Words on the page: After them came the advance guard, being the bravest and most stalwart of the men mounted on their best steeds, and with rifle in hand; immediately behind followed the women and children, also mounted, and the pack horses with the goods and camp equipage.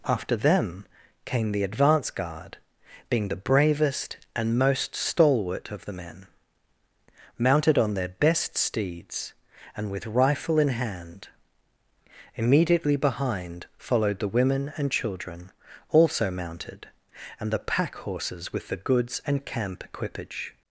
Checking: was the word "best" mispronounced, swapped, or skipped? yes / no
no